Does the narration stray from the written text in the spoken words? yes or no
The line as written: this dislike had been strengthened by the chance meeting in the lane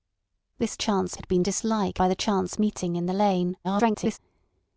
yes